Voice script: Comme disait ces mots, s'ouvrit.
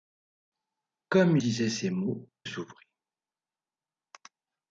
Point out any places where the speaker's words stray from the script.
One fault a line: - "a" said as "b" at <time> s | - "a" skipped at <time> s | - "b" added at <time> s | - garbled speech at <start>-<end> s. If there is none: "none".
none